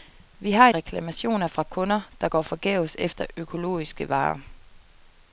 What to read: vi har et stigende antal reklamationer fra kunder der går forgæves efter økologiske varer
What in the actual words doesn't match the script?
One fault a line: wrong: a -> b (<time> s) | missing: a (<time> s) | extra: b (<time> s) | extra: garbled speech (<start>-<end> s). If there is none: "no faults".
missing: et stigende antal (0.7 s)